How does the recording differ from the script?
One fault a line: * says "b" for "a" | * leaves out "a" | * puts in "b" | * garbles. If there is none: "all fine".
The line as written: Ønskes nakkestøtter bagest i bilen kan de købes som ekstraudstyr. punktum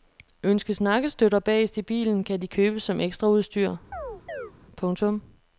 all fine